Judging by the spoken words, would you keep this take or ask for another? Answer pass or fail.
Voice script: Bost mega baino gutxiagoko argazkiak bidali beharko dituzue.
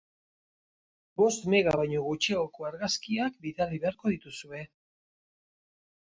pass